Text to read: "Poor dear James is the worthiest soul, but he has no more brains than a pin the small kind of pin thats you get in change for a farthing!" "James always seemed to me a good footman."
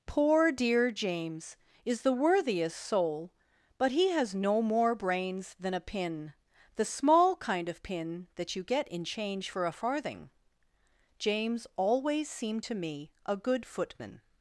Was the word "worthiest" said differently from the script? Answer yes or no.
no